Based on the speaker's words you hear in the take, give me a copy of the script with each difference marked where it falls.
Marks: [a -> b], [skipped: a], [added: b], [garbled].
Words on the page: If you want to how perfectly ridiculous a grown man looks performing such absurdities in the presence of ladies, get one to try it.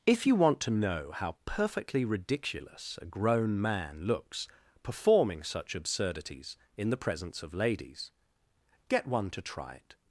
If you want to [added: know] how perfectly ridiculous a grown man looks performing such absurdities in the presence of ladies, get one to try it.